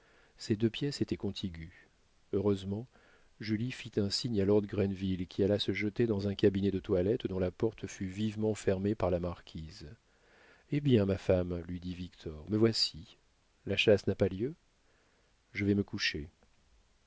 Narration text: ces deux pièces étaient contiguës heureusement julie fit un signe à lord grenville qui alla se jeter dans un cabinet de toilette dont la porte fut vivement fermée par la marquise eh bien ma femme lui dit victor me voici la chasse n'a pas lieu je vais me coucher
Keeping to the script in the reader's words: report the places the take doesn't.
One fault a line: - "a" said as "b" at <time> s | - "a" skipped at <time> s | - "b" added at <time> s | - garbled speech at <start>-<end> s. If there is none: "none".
none